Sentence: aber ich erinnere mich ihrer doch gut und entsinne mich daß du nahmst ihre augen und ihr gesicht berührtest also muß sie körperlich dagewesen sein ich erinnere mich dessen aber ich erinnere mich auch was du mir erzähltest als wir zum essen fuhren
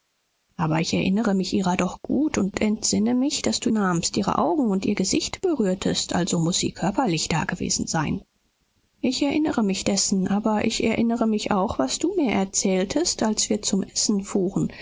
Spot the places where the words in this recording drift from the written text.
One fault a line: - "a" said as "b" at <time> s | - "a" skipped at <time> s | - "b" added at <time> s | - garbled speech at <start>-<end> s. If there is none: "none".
none